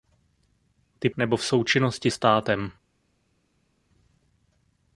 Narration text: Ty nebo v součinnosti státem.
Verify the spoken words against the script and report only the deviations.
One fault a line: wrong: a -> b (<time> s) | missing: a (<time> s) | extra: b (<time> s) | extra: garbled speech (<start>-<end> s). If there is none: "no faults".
no faults